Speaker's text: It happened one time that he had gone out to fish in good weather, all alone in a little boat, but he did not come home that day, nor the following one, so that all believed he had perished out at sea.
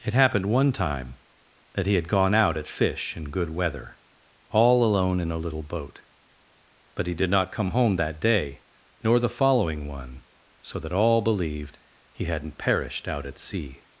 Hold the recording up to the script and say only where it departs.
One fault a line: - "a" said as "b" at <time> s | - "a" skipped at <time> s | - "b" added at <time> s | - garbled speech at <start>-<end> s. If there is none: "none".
- "to" said as "at" at 2.6 s
- "had" said as "hadn't" at 12.2 s